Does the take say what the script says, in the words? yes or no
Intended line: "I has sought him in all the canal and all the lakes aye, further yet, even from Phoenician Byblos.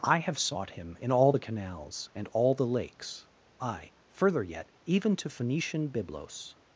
no